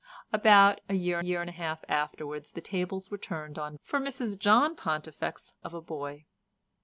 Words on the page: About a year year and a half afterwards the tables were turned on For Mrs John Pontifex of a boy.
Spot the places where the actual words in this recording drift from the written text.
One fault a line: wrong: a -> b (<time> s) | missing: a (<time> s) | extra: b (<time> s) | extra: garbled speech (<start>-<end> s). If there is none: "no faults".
no faults